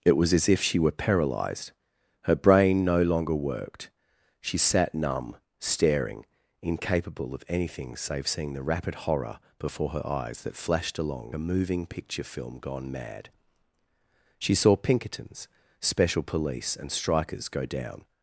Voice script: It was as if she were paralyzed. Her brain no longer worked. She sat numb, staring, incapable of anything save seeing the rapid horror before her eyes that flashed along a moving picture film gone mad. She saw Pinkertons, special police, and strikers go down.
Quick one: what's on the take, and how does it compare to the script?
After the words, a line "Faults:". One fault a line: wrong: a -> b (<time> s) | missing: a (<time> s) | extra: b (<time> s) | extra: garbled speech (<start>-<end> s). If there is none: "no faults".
It was as if she were paralyzed. Her brain no longer worked. She sat numb, staring, incapable of anything save seeing the rapid horror before her eyes that flashed along a moving picture film gone mad. She saw Pinkertons, special police, and strikers go down.
Faults:
no faults